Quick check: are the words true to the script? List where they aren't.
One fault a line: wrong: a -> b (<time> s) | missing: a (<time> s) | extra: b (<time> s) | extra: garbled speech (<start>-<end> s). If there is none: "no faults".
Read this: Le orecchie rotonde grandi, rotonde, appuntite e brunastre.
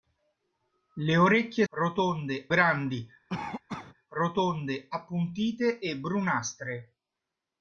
no faults